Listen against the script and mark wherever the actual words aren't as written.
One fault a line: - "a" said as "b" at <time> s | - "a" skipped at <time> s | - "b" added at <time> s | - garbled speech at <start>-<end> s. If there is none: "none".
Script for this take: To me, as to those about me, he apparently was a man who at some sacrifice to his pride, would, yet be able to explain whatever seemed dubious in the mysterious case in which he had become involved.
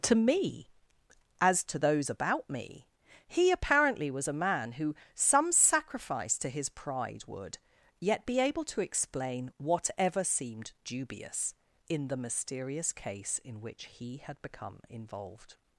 - "at" skipped at 5.0 s